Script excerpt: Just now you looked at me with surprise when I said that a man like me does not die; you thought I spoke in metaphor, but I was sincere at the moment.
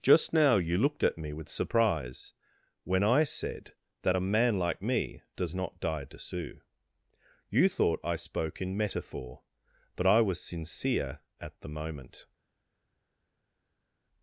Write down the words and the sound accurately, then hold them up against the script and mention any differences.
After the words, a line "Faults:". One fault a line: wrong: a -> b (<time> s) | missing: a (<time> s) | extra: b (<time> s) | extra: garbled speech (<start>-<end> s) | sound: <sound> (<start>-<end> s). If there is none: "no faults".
Just now you looked at me with surprise when I said that a man like me does not die; to sue you thought I spoke in metaphor, but I was sincere at the moment.
Faults:
extra: to sue (6.0 s)